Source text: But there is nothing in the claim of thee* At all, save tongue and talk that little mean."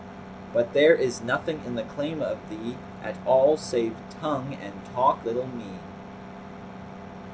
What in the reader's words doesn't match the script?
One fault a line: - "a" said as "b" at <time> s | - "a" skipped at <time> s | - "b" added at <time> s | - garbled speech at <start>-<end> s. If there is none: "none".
- "that" skipped at 5.2 s